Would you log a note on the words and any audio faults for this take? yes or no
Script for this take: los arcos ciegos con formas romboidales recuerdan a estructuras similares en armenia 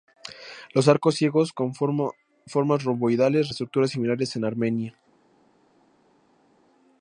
yes